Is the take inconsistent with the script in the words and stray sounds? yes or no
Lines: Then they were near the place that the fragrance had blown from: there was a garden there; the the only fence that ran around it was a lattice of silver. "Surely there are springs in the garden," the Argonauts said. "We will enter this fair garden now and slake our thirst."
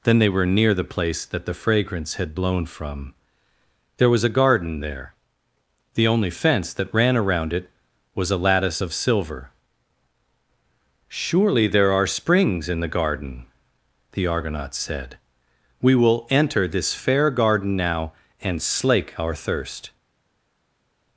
yes